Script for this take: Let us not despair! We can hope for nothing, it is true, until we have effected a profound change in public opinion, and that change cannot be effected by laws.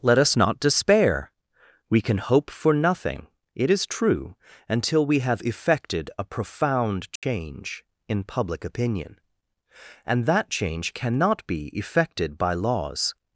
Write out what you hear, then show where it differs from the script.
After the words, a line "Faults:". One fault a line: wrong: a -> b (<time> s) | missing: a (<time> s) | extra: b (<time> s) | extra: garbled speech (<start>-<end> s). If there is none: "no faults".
Let us not despair! We can hope for nothing, it is true, until we have effected a profound change in public opinion, and that change cannot be effected by laws.
Faults:
no faults